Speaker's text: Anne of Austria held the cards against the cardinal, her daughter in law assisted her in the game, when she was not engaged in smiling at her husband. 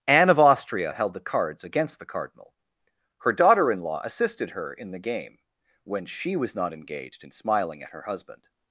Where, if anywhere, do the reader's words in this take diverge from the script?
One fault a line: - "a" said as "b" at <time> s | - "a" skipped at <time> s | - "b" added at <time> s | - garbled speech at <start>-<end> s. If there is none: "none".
none